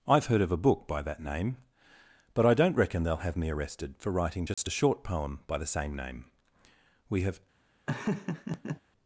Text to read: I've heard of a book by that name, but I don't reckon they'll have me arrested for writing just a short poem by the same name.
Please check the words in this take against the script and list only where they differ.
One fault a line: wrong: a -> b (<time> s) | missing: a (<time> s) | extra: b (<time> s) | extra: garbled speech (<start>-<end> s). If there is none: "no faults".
extra: We have (7.1 s)